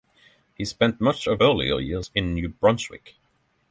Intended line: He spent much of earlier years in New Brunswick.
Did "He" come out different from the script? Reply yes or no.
no